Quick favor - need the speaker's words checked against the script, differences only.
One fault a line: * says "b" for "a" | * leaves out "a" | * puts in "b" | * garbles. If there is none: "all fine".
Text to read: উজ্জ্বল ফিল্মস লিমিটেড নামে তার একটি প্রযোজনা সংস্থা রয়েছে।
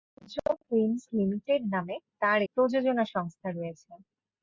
* leaves out "একটি"